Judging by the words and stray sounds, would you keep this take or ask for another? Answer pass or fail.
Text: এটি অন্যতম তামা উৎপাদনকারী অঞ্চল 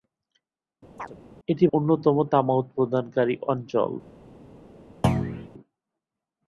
fail